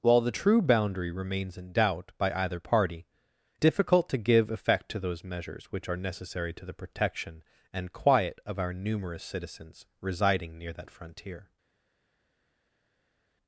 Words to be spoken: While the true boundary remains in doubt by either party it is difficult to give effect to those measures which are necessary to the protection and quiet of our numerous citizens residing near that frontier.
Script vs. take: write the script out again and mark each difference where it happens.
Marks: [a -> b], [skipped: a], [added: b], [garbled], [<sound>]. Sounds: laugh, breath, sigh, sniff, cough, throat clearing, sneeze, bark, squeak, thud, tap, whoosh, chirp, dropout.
While the true boundary remains in doubt by either party [skipped: it is] difficult to give effect to those measures which are necessary to the protection and quiet of our numerous citizens residing near that frontier.